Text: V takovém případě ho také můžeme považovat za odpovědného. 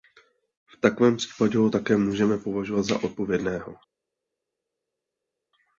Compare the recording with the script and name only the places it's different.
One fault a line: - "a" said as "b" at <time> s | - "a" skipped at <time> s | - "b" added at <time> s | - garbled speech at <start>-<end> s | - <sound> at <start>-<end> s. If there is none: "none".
none